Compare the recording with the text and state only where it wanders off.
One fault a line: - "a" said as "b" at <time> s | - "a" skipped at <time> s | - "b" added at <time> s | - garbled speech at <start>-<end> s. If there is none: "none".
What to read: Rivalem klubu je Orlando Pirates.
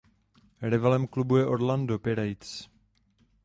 none